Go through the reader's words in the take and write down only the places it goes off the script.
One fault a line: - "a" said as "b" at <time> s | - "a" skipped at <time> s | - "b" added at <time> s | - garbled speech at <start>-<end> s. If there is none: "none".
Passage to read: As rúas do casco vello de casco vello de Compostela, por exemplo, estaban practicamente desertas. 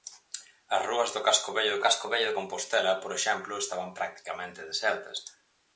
none